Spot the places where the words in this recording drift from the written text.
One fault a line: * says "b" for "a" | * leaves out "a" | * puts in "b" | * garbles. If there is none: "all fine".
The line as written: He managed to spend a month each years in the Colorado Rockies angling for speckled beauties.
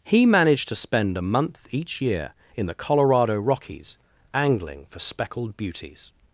* says "year" for "years"